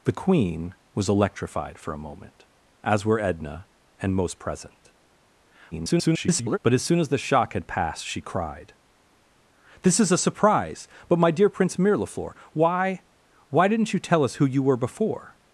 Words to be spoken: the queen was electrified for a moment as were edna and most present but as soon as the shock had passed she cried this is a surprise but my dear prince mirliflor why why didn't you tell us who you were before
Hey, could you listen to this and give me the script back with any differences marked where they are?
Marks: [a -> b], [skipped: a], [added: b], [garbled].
the queen was electrified for a moment as were edna and most present [garbled] but as soon as the shock had passed she cried this is a surprise but my dear prince mirliflor why why didn't you tell us who you were before